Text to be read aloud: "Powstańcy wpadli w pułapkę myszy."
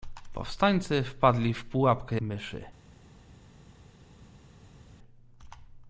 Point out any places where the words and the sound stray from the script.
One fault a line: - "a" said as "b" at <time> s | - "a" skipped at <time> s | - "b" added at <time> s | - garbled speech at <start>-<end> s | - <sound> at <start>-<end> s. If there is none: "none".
none